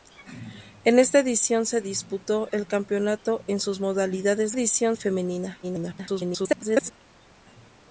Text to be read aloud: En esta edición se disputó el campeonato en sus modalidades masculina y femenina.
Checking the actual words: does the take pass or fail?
fail